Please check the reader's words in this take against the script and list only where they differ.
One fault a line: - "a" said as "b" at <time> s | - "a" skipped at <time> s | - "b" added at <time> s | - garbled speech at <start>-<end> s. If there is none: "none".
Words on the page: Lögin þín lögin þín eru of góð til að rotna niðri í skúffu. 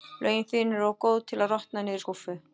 - "lögin þín" skipped at 0.7 s